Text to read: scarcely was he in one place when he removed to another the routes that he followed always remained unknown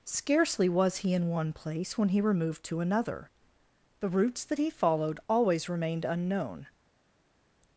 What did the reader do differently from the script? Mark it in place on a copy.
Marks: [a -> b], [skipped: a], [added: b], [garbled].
scarcely was he in one place when he removed to another the routes that he followed always remained unknown